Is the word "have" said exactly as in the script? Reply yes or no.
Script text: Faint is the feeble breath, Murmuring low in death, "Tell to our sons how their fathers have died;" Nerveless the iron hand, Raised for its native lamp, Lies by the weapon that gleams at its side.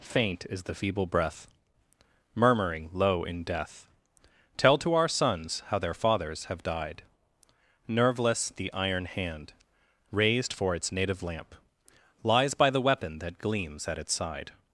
yes